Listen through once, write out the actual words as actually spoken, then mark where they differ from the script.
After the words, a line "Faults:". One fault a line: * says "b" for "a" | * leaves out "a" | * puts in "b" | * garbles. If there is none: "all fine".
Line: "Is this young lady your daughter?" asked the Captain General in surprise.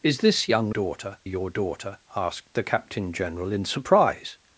"Is this young daughter your daughter?" asked the Captain General in surprise.
Faults:
* says "daughter" for "lady"